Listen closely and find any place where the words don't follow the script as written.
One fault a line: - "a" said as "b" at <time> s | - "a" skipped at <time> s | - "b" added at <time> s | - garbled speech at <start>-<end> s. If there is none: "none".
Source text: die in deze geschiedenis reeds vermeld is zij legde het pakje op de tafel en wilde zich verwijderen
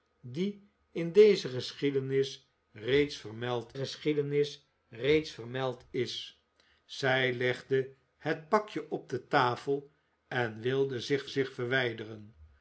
- "geschiedenis reeds vermeld" added at 3.7 s
- "zich" added at 11.3 s